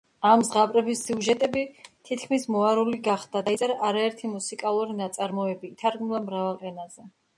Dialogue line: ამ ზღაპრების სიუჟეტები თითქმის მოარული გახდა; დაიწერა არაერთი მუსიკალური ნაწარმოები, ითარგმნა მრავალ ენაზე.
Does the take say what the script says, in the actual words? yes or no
yes